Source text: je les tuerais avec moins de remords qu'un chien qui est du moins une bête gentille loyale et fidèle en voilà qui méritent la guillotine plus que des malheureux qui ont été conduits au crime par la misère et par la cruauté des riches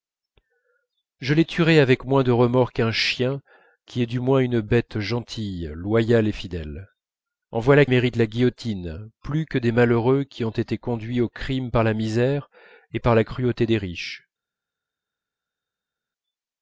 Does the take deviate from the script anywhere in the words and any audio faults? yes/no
yes